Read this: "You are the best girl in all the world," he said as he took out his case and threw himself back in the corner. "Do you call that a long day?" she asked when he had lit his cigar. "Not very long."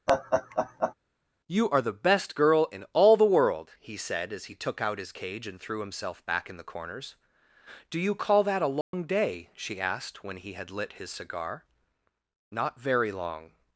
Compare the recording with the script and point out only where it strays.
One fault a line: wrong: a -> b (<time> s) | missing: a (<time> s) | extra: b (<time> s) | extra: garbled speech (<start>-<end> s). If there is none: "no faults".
wrong: case -> cage (5.1 s)
wrong: corner -> corners (6.6 s)